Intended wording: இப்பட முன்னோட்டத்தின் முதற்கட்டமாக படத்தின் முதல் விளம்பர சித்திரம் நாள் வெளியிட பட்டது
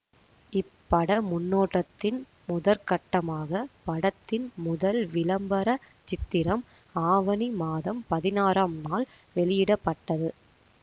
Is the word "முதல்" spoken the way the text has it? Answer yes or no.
yes